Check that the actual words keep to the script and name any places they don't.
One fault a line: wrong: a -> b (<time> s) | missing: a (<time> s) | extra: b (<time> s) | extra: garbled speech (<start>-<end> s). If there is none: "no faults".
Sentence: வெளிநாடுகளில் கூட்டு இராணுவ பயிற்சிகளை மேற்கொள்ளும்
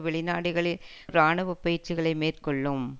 missing: கூட்டு (0.8 s)